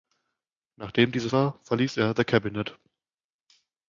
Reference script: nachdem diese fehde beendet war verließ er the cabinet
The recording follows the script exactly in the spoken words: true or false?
false